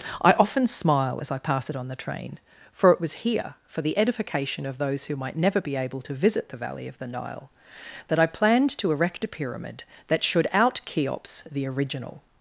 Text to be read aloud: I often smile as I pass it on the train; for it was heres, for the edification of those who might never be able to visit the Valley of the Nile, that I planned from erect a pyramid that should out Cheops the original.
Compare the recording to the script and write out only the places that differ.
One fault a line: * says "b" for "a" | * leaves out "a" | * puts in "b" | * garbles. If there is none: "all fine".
* says "here" for "heres"
* says "to" for "from"